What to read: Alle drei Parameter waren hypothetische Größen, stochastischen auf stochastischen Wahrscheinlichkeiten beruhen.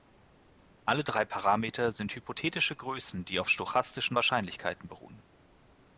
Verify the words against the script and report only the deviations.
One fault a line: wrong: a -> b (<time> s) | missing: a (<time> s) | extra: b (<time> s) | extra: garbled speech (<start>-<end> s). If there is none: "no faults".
wrong: waren -> sind (1.9 s)
wrong: stochastischen -> die (3.2 s)